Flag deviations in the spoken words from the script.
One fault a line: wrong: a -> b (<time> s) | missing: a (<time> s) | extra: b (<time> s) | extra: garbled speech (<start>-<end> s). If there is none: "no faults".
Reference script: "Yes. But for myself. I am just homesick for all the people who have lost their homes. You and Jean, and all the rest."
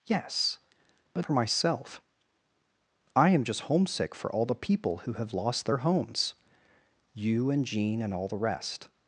no faults